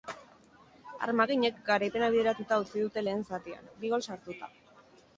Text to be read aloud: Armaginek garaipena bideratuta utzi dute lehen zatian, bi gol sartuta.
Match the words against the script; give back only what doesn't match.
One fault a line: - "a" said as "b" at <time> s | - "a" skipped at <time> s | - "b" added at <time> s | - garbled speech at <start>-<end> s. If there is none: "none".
none